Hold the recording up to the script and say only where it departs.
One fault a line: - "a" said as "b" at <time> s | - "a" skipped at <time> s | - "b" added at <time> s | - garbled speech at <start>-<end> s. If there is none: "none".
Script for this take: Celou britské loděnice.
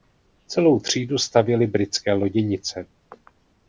- "třídu stavěly" added at 0.8 s